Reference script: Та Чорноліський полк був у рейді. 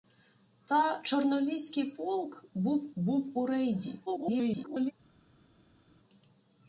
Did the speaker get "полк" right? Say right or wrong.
right